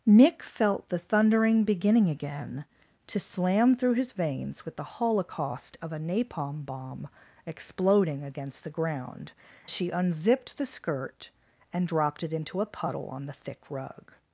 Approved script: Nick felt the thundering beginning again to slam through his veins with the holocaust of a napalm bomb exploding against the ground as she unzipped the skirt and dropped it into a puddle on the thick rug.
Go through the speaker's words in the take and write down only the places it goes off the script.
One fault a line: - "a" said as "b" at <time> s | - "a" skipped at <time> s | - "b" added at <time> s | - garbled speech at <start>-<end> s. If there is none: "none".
- "as" skipped at 9.3 s